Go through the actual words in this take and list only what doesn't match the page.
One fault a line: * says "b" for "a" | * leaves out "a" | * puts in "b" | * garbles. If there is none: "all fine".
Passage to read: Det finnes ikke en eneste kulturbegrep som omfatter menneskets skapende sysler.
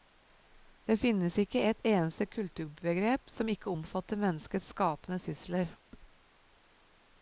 * says "et" for "en"
* puts in "ikke"